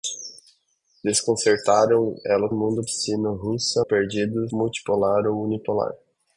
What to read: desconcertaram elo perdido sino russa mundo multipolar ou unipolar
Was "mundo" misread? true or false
true